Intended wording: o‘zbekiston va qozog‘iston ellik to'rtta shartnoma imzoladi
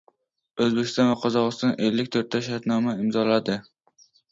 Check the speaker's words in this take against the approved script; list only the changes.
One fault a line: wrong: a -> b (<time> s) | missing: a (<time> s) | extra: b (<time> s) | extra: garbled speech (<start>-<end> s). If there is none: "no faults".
no faults